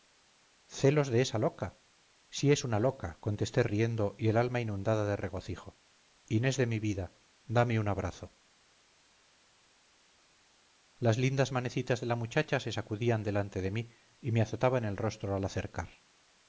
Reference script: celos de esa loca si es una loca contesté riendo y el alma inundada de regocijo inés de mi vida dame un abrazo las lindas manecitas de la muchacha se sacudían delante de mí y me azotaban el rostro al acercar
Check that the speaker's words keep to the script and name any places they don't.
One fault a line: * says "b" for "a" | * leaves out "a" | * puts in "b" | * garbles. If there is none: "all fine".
all fine